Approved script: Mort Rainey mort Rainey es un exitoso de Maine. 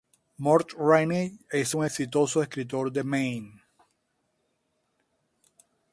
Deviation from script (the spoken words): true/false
true